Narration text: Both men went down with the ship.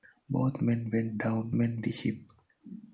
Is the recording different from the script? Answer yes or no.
yes